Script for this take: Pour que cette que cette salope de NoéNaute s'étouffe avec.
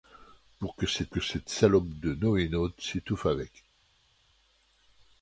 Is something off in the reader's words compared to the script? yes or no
no